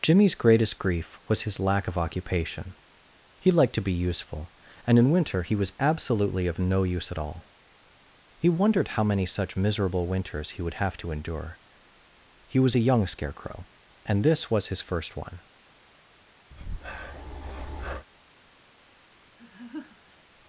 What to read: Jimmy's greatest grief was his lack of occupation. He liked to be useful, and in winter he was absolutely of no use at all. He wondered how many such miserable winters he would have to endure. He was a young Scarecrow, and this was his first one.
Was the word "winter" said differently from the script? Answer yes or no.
no